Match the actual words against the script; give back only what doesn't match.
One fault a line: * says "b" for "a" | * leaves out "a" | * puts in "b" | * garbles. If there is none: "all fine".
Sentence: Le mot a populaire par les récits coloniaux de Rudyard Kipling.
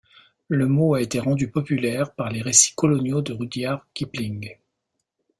* puts in "été rendu"